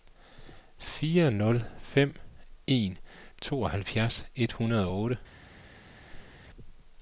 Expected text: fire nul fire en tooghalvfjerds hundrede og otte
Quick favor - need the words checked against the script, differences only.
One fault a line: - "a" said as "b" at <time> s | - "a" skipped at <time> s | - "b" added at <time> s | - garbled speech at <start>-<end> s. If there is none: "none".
- "fire" said as "fem" at 1.8 s
- "et" added at 4.3 s